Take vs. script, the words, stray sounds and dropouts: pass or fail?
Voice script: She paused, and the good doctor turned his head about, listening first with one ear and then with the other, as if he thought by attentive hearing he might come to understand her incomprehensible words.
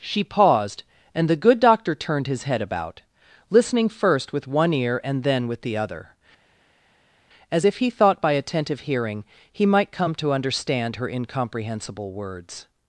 pass